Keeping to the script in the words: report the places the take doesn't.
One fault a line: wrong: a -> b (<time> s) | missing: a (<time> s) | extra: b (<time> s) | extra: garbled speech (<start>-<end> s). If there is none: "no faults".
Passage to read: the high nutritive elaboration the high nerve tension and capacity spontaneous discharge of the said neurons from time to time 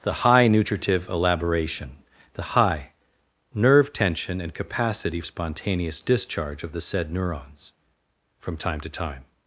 no faults